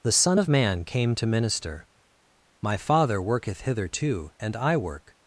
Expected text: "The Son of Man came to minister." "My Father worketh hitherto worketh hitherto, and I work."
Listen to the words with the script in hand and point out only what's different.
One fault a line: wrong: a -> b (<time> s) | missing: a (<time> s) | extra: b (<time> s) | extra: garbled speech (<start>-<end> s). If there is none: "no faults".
missing: worketh hitherto (4.3 s)